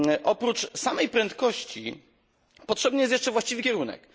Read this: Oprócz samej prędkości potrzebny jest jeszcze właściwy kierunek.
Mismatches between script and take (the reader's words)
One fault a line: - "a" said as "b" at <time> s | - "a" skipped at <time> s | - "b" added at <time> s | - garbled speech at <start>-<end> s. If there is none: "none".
none